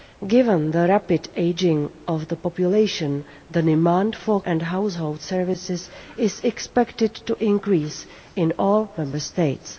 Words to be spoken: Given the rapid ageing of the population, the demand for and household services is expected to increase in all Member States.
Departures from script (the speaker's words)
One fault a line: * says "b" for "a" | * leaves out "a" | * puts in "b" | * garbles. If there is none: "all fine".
all fine